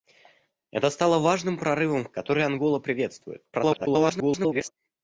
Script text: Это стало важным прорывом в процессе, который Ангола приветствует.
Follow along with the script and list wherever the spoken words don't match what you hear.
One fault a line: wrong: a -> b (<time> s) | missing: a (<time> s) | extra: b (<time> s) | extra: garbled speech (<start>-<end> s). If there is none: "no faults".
missing: процессе (2.1 s)
extra: garbled speech (3.5-4.7 s)